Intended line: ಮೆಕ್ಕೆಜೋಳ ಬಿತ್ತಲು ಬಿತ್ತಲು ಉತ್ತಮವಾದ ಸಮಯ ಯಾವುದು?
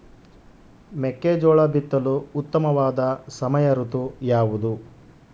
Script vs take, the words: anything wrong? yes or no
yes